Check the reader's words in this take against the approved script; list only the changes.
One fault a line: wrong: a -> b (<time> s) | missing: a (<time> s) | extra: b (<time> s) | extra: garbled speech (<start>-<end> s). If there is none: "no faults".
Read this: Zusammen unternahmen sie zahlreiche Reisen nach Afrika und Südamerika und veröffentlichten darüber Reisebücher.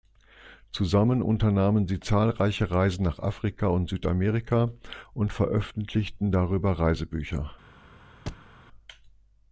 no faults